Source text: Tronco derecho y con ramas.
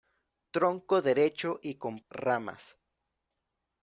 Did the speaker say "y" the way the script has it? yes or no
yes